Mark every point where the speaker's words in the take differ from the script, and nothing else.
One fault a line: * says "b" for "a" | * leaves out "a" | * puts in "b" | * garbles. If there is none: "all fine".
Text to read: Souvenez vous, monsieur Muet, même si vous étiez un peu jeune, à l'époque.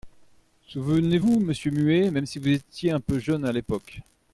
all fine